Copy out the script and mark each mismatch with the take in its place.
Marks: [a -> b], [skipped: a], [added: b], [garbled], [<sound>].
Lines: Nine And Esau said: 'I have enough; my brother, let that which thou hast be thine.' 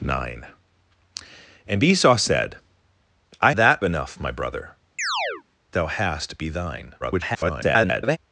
Nine And Esau said: 'I [have -> that] enough; my brother, [skipped: let that which] [chirp] thou hast be thine.' [garbled]